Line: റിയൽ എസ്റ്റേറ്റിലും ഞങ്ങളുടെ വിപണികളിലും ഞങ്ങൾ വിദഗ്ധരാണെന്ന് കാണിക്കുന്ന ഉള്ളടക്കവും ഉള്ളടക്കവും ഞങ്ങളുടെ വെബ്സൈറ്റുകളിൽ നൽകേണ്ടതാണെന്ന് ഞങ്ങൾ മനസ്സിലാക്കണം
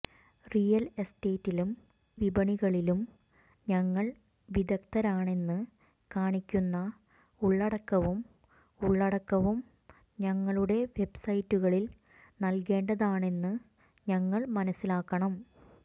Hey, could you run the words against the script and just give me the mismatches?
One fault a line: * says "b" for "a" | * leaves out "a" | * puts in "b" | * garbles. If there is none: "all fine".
* leaves out "ഞങ്ങളുടെ"